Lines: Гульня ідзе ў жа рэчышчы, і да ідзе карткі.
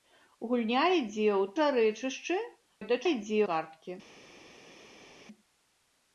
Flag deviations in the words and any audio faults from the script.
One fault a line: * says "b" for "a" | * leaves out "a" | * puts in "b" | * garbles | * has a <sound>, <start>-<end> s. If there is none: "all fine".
all fine